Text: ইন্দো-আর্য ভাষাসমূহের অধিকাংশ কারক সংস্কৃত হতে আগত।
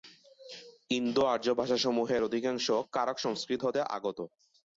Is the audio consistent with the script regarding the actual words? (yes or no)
yes